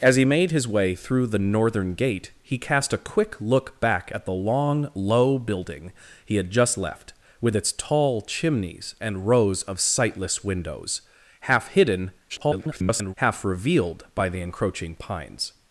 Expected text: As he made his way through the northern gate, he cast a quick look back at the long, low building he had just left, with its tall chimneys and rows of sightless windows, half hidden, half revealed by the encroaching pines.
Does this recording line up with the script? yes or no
no